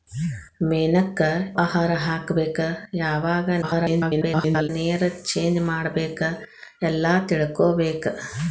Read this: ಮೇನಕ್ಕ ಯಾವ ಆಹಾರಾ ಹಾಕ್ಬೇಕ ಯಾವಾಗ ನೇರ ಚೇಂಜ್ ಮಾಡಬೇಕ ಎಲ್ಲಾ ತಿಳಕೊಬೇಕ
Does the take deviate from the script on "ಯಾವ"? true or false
true